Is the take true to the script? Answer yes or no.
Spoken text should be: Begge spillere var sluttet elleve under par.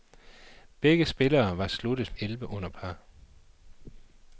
yes